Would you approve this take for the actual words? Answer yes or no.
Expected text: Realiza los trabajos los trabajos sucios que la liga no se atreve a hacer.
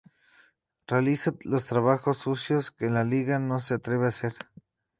no